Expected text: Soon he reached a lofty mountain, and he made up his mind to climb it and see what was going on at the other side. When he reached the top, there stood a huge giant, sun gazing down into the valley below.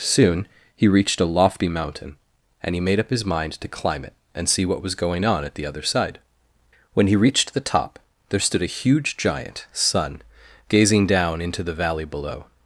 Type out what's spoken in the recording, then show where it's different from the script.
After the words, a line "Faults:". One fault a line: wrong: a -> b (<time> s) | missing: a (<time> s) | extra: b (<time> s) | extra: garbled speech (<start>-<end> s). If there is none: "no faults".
Soon he reached a lofty mountain, and he made up his mind to climb it and see what was going on at the other side. When he reached the top, there stood a huge giant, sun gazing down into the valley below.
Faults:
no faults